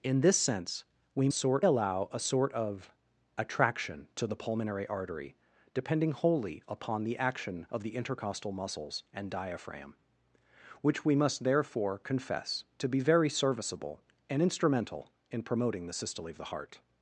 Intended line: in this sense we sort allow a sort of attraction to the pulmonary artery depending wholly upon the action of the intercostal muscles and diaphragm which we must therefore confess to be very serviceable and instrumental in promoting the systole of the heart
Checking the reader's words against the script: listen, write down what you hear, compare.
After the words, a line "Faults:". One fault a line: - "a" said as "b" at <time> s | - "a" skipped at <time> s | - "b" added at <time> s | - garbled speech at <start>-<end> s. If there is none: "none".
in this sense we sort allow a sort of attraction to the pulmonary artery depending wholly upon the action of the intercostal muscles and diaphragm which we must therefore confess to be very serviceable and instrumental in promoting the systole of the heart
Faults:
none